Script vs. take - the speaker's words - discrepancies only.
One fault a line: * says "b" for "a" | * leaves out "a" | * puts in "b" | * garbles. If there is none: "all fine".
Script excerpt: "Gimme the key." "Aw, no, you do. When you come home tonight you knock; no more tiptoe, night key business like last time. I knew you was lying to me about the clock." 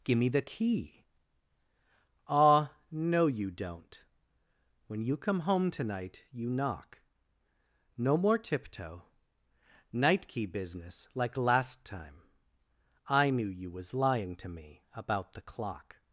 * says "don't" for "do"